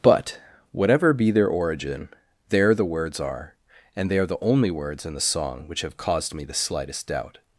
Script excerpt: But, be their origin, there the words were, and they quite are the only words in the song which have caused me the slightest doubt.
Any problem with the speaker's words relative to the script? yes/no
yes